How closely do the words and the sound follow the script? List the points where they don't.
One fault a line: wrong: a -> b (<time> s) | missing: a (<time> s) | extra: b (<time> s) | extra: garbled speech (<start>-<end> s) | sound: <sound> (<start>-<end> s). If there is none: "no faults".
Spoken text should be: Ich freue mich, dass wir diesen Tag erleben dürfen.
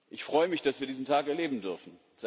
no faults